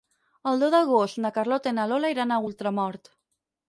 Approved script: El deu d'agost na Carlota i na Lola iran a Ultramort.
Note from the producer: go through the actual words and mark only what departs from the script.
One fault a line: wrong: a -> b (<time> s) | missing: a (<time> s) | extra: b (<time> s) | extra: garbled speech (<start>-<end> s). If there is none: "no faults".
no faults